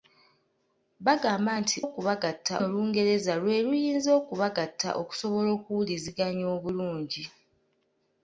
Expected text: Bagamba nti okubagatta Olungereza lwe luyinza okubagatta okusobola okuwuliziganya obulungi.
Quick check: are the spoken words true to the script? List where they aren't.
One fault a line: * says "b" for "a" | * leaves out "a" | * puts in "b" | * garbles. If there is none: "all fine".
all fine